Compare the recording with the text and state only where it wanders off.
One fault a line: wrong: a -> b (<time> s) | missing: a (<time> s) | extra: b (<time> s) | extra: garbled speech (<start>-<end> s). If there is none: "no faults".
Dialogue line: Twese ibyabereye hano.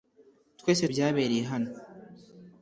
no faults